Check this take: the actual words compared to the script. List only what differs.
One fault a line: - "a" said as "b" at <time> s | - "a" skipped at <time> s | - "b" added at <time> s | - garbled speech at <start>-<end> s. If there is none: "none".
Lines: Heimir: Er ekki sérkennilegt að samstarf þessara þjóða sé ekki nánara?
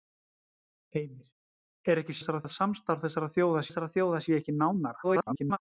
- "sérkennilegt" said as "þessara" at 2.2 s
- "þessara þjóða" added at 3.7 s
- garbled speech at 5.0-5.6 s